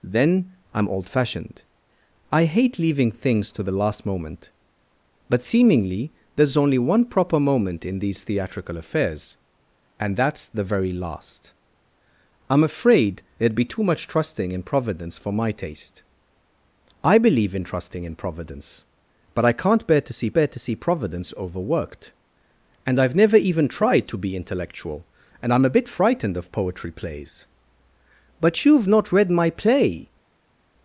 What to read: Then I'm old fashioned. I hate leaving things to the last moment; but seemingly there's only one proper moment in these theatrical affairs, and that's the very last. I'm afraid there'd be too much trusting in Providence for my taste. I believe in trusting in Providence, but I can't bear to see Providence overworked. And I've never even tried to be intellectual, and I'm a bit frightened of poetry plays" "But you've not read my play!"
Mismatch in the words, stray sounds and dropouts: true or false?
true